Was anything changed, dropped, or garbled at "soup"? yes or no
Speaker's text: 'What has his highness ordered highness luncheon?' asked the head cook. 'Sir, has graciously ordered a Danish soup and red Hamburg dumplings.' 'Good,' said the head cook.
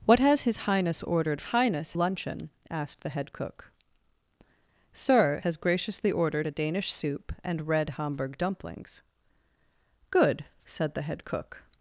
no